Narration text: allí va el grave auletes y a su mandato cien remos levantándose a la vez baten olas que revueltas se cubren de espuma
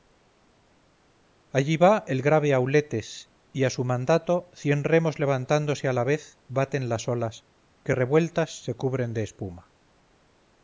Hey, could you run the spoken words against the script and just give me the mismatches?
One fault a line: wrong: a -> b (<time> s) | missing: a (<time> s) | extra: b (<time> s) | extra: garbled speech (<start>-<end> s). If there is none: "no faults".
extra: las (6.9 s)